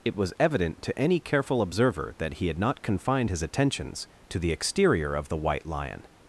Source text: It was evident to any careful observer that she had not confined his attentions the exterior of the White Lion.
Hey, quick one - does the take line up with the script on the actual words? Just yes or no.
no